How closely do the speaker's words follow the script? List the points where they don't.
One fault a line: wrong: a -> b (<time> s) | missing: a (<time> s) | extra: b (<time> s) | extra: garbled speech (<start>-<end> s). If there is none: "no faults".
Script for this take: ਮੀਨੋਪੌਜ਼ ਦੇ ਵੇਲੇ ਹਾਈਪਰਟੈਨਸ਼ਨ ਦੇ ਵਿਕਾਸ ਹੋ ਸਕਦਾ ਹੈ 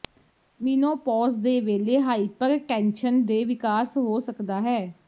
no faults